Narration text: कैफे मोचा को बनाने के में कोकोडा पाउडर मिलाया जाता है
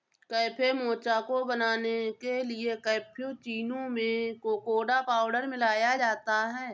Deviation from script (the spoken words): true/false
true